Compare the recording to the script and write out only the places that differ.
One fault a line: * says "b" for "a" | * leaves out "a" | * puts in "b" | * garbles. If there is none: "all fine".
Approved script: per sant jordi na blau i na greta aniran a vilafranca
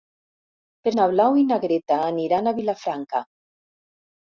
* leaves out "sant jordi"